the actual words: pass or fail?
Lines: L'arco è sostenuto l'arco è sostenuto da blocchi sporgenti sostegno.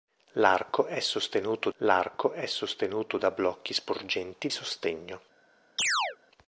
pass